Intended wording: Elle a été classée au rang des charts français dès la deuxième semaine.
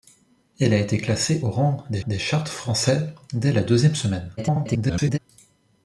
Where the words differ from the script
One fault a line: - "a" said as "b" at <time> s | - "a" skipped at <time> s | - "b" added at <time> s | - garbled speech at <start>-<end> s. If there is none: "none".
- "des" added at 2.1 s
- garbled speech at 4.4-5.2 s